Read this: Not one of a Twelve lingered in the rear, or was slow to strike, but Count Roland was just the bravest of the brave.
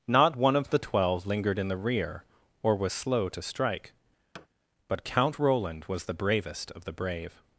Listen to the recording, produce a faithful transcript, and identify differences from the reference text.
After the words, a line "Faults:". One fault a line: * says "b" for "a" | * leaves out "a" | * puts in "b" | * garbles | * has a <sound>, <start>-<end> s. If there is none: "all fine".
Not one of the Twelve lingered in the rear, or was slow to strike, but Count Roland was the bravest of the brave.
Faults:
* says "the" for "a"
* has a thud, 4.3-4.5 s
* leaves out "just"